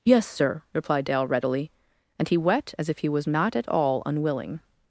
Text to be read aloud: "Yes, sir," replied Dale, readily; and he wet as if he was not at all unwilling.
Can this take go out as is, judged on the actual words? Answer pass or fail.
pass